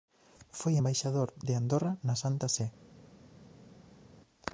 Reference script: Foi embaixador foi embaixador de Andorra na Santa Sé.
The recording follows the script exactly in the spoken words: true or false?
false